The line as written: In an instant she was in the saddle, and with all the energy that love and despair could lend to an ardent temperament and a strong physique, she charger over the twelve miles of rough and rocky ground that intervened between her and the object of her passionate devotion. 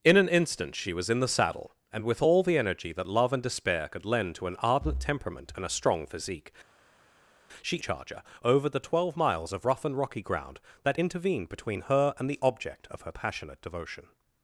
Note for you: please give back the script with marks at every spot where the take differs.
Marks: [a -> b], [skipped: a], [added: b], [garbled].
In an instant she was in the saddle, and with all the energy that love and despair could lend to an ardent temperament and a strong physique, she charger over the twelve miles of rough and rocky ground that intervened between her and the object of her passionate devotion.